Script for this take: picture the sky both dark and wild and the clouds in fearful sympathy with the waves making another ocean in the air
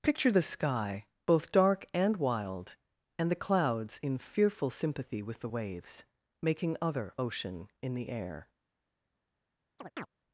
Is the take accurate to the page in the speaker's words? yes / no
no